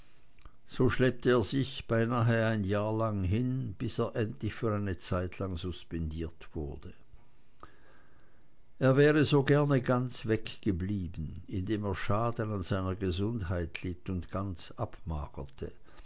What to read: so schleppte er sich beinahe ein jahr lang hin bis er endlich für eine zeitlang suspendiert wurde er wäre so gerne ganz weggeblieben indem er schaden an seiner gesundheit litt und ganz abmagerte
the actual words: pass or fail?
pass